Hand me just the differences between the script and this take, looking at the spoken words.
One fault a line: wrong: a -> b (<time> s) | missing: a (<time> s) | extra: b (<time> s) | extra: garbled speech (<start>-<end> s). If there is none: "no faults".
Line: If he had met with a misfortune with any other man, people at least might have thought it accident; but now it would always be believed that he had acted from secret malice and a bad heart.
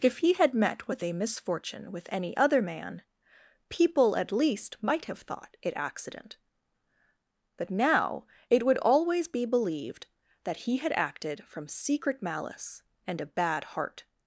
no faults